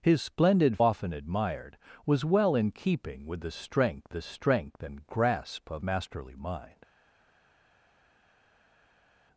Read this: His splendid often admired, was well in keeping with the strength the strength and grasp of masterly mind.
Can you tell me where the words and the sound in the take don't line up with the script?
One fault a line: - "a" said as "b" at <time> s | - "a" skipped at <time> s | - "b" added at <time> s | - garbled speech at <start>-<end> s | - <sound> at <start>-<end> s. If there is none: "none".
none